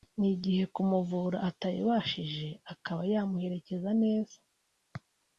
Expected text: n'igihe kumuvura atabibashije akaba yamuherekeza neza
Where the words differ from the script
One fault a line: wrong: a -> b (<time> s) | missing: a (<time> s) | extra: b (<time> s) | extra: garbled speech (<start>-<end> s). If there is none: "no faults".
no faults